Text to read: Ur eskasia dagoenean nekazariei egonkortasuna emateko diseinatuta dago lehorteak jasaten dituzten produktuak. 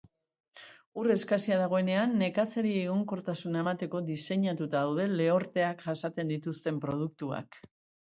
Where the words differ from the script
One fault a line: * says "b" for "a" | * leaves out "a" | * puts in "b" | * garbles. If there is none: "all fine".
* says "daude" for "dago"